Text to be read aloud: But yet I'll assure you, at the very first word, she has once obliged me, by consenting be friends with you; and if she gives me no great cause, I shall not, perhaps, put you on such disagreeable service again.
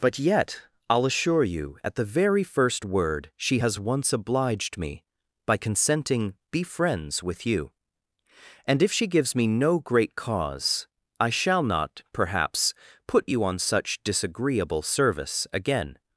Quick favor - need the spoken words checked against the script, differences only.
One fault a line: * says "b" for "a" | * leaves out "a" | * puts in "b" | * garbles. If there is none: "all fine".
all fine